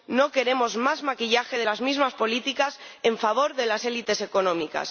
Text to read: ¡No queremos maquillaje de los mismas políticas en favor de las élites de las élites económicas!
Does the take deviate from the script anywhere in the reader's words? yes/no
yes